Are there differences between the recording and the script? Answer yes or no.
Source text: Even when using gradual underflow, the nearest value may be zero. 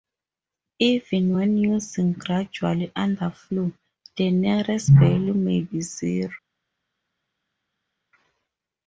no